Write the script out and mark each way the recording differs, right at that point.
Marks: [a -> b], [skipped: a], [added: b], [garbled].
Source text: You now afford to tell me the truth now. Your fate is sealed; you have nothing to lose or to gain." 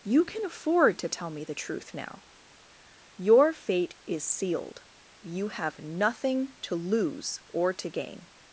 You [now -> can] afford to tell me the truth now. Your fate is sealed; you have nothing to lose or to gain."